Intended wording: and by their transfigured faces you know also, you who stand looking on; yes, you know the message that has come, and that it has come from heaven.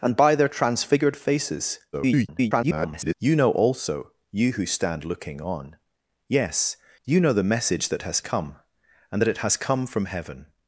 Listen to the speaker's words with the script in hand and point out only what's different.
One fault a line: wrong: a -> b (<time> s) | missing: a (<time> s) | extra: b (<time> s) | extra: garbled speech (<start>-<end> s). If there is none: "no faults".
extra: garbled speech (1.9-3.1 s)